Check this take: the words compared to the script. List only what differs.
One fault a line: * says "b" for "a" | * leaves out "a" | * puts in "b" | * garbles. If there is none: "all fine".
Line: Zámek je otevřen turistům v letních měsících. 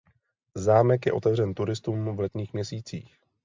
all fine